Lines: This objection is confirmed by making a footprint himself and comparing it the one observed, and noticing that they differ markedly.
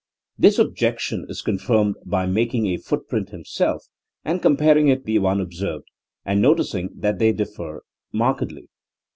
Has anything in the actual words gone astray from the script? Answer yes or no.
no